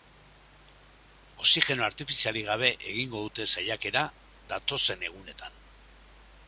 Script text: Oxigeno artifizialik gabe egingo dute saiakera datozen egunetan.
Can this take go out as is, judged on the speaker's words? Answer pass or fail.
pass